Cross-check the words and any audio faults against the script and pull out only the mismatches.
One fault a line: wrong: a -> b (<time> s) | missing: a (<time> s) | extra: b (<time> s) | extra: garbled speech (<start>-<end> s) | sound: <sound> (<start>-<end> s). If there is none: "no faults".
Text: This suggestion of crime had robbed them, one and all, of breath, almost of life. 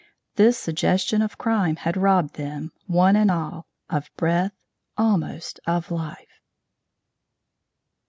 no faults